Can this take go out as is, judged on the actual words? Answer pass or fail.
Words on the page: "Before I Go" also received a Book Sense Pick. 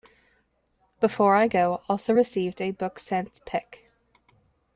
pass